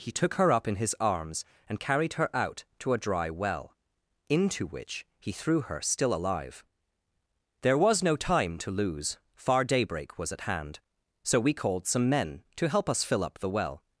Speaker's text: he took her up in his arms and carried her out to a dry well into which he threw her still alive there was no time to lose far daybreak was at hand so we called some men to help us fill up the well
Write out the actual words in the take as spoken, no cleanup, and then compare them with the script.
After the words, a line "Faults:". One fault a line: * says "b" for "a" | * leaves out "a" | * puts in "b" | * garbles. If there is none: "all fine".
he took her up in his arms and carried her out to a dry well into which he threw her still alive there was no time to lose far daybreak was at hand so we called some men to help us fill up the well
Faults:
all fine